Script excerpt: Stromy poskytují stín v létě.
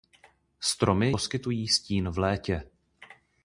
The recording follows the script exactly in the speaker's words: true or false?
true